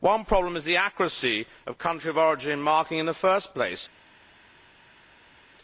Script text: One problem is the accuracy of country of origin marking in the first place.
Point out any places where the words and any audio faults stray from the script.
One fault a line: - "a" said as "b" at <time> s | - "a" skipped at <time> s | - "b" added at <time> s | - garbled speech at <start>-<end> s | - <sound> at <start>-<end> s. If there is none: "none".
none